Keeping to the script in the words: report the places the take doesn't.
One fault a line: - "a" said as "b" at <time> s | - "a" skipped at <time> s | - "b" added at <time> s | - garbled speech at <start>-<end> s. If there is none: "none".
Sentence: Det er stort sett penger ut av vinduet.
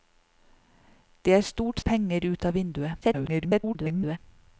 - "sett" skipped at 1.8 s
- garbled speech at 3.0-4.2 s